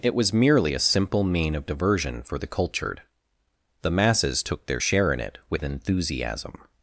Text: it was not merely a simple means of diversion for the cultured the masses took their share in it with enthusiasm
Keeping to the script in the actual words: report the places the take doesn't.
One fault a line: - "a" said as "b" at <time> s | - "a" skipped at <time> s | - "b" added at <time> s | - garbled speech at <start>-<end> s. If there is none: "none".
- "not" skipped at 0.3 s
- "means" said as "mean" at 1.2 s